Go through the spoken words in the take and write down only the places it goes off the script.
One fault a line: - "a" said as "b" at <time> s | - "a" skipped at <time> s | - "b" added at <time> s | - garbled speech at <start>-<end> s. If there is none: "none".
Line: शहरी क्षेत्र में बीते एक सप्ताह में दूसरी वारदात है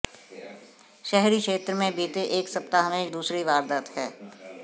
none